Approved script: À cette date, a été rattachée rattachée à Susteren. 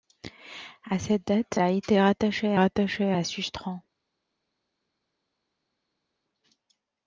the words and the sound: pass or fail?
pass